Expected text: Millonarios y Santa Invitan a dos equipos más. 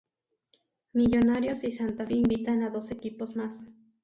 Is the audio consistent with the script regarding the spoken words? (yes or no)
yes